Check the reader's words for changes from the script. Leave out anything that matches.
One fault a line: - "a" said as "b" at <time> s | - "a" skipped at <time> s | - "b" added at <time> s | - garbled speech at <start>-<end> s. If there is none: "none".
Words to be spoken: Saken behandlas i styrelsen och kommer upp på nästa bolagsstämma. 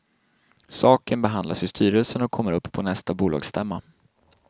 none